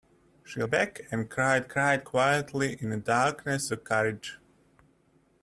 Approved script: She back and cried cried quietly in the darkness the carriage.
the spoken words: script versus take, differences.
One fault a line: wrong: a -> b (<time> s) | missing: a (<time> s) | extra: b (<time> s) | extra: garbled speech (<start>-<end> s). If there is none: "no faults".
no faults